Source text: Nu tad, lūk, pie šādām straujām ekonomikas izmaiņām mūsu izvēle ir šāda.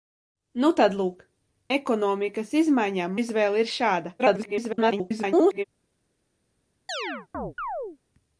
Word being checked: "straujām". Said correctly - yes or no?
no